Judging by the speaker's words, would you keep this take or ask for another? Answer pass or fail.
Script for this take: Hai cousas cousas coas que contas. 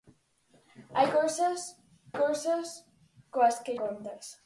pass